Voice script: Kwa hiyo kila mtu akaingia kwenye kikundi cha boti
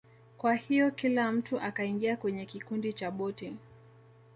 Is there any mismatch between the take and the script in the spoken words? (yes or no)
no